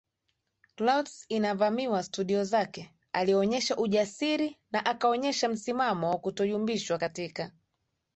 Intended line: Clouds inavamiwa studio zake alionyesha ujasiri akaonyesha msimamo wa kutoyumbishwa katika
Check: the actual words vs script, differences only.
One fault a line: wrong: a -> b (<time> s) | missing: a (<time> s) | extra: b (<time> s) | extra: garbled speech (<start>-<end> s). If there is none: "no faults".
extra: na (4.7 s)